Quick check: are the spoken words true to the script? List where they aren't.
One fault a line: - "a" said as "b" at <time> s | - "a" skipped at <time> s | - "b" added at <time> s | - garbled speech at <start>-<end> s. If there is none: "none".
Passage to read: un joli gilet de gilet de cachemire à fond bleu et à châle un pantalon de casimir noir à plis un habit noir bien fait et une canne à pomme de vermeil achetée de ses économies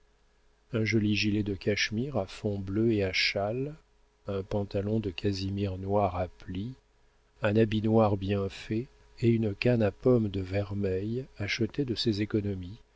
- "gilet de" skipped at 1.5 s